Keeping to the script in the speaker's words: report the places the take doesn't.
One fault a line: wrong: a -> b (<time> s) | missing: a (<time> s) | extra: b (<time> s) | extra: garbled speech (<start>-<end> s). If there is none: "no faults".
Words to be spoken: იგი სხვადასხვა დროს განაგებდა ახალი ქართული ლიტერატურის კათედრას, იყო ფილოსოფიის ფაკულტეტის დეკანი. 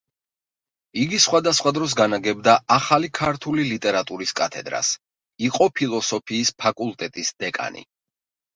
no faults